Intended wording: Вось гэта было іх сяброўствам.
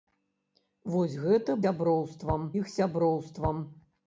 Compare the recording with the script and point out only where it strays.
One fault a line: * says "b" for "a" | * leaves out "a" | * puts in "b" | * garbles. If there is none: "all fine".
* says "сяброўствам" for "было"